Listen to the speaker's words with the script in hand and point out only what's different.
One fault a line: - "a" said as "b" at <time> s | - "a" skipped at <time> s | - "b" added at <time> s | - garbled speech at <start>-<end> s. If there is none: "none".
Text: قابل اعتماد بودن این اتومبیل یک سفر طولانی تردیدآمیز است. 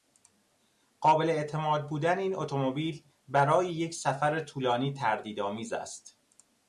- "برای" added at 3.3 s